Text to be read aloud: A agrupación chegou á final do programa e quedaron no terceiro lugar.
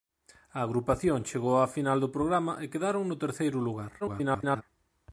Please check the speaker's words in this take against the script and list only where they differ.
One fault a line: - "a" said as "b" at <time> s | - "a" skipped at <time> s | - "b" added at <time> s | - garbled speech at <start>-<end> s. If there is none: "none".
- garbled speech at 4.0-4.6 s